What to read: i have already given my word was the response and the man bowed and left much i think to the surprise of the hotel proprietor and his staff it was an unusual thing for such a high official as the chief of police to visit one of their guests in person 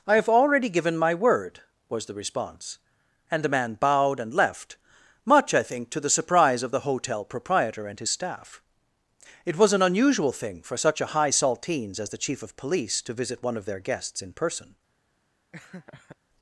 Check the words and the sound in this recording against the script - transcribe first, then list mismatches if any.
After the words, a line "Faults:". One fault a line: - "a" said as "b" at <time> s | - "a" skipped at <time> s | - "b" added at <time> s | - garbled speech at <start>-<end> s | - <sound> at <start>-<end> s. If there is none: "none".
i have already given my word was the response and the man bowed and left much i think to the surprise of the hotel proprietor and his staff it was an unusual thing for such a high saltines as the chief of police to visit one of their guests in person
Faults:
- "official" said as "saltines" at 11.3 s
- laugh at 15.5-16.2 s